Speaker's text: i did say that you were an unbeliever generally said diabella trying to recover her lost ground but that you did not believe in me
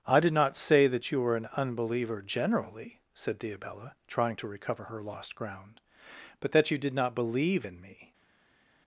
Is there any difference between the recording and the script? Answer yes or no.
yes